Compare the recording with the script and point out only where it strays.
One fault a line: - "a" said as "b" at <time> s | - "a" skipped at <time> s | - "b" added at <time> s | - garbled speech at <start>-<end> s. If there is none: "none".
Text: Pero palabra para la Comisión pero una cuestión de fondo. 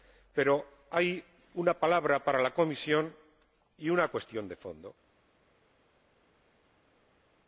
- "hay una" added at 0.9 s
- "pero" said as "y" at 3.8 s